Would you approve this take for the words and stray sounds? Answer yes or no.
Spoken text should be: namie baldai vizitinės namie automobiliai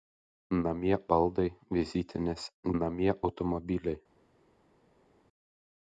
yes